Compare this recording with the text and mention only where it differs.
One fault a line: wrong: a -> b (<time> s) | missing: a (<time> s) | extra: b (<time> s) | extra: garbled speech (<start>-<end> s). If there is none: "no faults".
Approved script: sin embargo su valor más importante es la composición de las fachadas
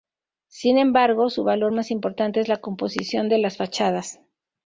no faults